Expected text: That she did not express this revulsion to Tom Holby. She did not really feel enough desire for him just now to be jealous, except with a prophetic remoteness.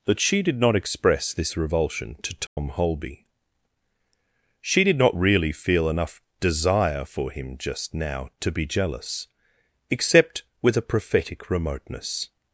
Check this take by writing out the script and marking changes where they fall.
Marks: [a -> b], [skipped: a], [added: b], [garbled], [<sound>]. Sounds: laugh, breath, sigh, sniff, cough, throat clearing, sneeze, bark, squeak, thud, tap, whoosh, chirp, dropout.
That she did not express this revulsion to Tom [dropout] Holby. She did not really feel enough desire for him just now to be jealous, except with a prophetic remoteness.